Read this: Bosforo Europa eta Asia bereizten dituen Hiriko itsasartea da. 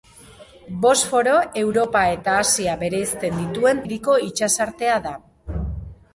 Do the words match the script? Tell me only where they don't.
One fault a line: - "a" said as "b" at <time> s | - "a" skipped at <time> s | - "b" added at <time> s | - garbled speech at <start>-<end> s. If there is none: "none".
none